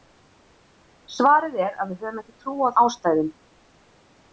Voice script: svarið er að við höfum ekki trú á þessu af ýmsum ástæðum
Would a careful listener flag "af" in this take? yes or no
yes